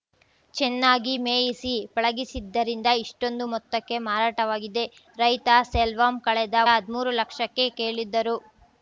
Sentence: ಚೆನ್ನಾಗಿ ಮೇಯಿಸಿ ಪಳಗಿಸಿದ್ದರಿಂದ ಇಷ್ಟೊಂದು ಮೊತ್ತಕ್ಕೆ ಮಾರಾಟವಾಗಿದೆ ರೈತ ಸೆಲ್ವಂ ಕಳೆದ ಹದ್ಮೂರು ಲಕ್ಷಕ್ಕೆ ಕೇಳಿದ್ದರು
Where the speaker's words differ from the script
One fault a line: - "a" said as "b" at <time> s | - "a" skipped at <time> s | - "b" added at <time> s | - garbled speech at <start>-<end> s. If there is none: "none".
none